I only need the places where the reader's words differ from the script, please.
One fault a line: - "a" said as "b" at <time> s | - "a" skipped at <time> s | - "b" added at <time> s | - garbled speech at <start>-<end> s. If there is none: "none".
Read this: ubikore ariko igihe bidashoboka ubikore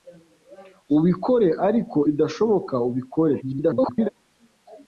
- "igihe" skipped at 2.0 s
- garbled speech at 3.4-4.1 s